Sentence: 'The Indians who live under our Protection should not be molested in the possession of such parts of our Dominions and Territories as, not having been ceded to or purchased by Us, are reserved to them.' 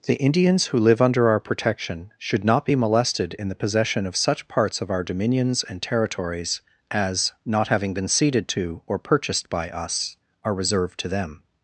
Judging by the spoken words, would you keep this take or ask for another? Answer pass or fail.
pass